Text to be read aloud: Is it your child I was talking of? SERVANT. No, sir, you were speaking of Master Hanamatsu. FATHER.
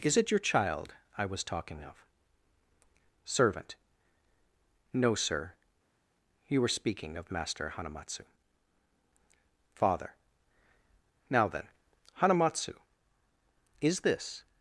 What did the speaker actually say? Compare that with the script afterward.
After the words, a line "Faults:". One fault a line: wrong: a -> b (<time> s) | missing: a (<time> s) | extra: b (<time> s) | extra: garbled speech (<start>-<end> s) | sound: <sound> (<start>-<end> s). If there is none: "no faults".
Is it your child I was talking of? SERVANT. No, sir, you were speaking of Master Hanamatsu. FATHER. Now then, Hanamatsu. Is this
Faults:
extra: Now then Hanamatsu Is this (11.3 s)